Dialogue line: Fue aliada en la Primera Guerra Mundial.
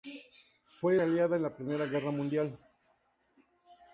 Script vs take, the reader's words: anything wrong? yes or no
no